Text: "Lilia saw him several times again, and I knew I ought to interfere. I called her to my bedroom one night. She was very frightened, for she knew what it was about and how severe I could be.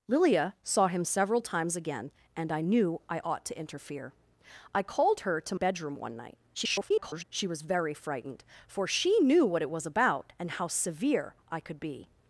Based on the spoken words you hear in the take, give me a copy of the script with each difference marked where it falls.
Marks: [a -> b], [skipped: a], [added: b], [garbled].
"Lilia saw him several times again, and I knew I ought to interfere. I called her to [skipped: my] bedroom one night. [garbled] She was very frightened, for she knew what it was about and how severe I could be.